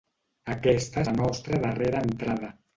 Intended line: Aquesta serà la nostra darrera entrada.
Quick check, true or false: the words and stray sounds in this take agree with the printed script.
false